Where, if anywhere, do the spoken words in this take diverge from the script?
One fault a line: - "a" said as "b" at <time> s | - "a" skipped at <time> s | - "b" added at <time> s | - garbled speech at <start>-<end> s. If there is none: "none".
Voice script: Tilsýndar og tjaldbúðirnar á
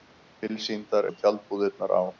none